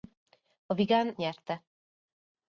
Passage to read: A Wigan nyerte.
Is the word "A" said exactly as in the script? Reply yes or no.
yes